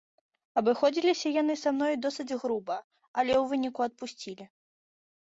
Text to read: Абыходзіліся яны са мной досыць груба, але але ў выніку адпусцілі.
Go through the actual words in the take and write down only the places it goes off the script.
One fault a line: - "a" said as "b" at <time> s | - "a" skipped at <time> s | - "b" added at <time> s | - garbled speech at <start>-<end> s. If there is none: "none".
- "але" skipped at 3.3 s